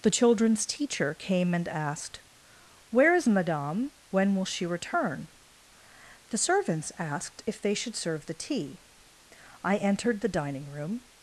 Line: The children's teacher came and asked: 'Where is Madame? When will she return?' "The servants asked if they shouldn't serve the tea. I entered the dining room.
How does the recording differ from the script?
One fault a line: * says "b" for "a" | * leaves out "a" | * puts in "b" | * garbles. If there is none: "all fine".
* says "should" for "shouldn't"